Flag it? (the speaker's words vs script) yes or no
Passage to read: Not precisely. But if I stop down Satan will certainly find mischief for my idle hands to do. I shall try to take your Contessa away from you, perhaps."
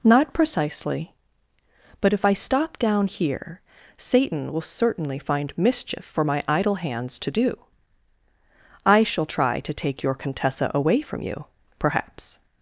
yes